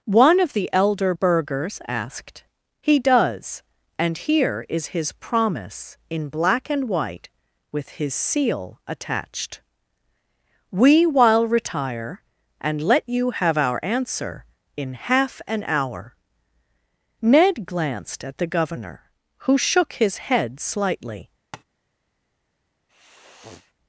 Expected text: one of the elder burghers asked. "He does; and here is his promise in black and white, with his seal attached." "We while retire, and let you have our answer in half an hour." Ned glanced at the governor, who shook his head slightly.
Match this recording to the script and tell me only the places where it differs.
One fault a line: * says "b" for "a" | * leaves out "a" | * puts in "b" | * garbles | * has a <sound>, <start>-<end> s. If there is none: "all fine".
* has a tap, 21.5-21.6 s
* has a sniff, 22.9-23.7 s